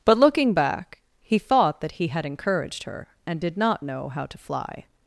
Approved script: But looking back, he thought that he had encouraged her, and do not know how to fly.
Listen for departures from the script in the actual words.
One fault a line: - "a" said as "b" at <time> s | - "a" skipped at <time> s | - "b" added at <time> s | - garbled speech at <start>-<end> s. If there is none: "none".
- "do" said as "did" at 3.4 s